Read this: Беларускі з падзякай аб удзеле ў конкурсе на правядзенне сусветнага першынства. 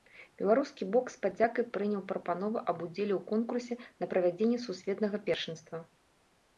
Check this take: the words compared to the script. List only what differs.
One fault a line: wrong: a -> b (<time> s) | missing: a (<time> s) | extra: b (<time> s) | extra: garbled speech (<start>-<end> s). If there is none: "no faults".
extra: бок (0.9 s)
extra: прыняў прапанову (1.8 s)